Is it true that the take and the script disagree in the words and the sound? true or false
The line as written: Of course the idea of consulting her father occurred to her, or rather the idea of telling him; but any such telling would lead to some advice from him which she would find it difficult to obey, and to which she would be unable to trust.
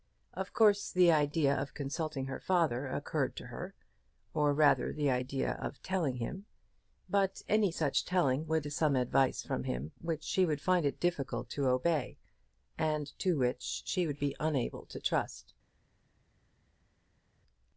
true